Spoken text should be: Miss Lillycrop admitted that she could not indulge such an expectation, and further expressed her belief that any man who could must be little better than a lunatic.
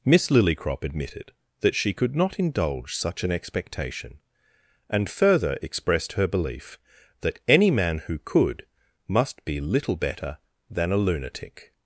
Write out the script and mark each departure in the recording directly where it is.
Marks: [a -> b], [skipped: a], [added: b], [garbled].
Miss Lillycrop admitted that she could not indulge such an expectation, and further expressed her belief that any man who could must be little better than a lunatic.